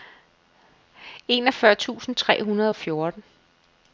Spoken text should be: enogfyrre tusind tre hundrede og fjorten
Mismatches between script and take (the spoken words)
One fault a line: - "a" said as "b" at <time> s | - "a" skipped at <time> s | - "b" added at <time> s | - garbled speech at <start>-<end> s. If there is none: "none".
none